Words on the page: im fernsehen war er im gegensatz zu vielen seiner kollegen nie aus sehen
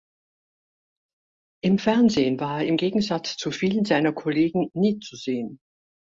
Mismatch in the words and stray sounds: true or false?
true